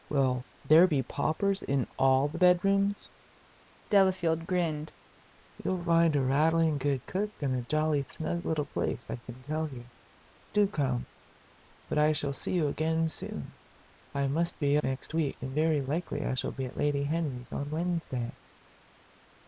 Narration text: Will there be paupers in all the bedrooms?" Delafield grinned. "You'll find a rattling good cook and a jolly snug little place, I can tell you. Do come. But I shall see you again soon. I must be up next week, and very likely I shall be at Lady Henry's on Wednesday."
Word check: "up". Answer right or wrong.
wrong